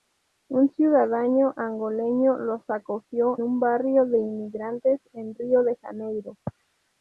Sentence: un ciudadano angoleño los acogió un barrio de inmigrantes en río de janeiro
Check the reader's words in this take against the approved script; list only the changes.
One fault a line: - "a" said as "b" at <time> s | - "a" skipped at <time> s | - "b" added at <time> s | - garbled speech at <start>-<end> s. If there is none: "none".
none